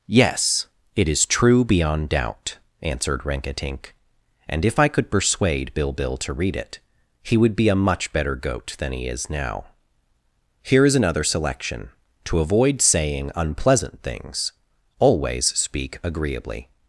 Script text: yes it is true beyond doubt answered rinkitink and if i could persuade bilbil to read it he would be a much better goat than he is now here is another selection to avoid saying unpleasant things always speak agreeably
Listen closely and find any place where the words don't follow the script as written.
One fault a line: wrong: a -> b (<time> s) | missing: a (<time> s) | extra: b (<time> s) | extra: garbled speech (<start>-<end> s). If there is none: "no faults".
no faults